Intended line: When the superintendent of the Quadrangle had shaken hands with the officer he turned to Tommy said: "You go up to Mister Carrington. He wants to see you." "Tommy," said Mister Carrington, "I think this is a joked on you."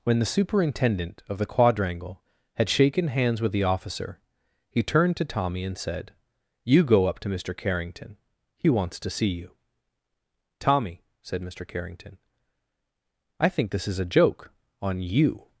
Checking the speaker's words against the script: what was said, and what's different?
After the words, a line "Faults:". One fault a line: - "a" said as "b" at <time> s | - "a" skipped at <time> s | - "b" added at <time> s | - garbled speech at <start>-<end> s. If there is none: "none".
When the superintendent of the Quadrangle had shaken hands with the officer he turned to Tommy and said: "You go up to Mister Carrington. He wants to see you." "Tommy," said Mister Carrington, "I think this is a joke on you."
Faults:
- "and" added at 5.7 s
- "joked" said as "joke" at 14.1 s